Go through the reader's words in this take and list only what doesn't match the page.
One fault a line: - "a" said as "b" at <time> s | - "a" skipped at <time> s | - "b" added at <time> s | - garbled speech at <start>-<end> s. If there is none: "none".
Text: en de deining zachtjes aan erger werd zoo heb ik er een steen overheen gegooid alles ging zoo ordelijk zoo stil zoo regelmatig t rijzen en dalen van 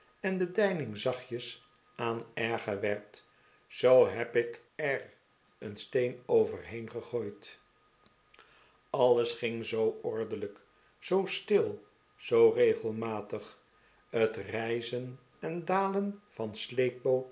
none